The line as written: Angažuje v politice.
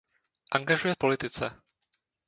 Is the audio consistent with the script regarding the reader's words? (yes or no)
yes